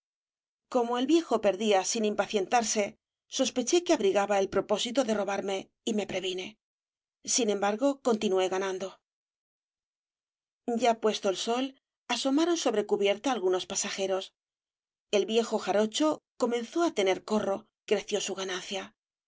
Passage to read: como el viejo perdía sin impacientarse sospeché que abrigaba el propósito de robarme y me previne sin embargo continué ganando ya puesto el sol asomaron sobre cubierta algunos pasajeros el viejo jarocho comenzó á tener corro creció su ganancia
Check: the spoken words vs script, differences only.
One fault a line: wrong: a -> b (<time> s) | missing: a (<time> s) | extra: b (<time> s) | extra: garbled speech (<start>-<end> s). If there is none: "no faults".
no faults